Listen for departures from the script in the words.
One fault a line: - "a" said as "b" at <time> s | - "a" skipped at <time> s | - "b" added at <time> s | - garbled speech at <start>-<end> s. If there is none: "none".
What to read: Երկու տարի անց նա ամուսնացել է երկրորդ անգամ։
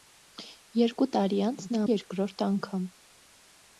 - "ամուսնացել" skipped at 1.8 s